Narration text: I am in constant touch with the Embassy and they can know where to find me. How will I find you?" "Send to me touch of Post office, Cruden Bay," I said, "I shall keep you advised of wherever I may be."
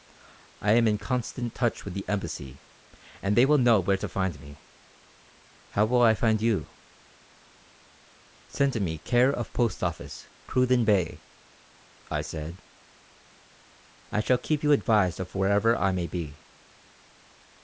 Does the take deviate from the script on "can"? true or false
true